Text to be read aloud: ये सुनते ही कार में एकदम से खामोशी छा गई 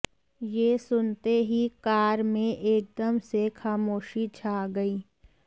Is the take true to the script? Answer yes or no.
yes